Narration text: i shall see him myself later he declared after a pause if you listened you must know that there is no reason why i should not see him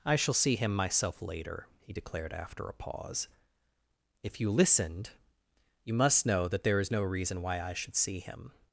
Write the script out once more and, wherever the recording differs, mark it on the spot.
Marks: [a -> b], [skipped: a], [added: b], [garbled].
i shall see him myself later he declared after a pause if you listened you must know that there is no reason why i should [skipped: not] see him